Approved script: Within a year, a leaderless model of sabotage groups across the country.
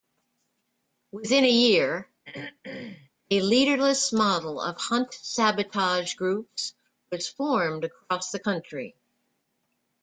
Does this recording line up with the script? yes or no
no